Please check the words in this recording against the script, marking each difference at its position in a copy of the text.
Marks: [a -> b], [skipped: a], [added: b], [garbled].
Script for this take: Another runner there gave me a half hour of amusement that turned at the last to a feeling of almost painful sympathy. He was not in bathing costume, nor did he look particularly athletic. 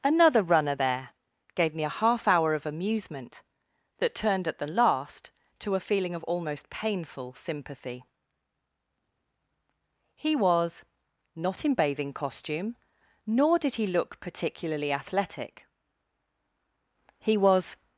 Another runner there gave me a half hour of amusement that turned at the last to a feeling of almost painful sympathy. He was not in bathing costume, nor did he look particularly athletic. [added: He was]